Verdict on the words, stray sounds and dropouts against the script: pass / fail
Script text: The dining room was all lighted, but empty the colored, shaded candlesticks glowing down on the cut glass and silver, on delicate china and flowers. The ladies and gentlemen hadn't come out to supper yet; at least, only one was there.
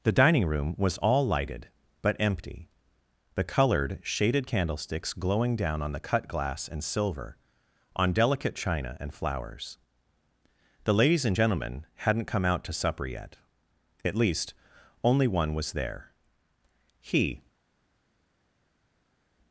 fail